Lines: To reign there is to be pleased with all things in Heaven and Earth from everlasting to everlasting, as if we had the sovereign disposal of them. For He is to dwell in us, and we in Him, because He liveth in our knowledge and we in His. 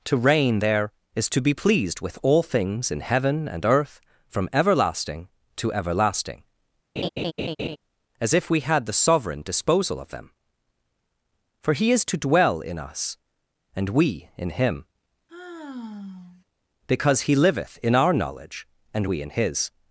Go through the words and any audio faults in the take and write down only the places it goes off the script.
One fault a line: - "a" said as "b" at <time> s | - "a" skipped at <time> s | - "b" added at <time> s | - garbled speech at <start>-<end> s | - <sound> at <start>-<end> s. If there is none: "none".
- laugh at 7.0-7.8 s
- sigh at 15.3-16.4 s